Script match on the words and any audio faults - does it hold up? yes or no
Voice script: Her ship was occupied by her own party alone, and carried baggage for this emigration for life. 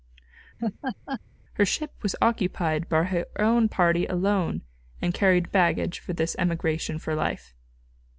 no